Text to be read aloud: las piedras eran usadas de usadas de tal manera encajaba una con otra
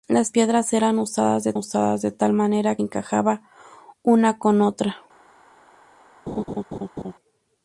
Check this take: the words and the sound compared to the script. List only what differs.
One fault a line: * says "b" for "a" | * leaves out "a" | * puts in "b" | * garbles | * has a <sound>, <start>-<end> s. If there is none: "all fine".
* has a laugh, 6.3-7.1 s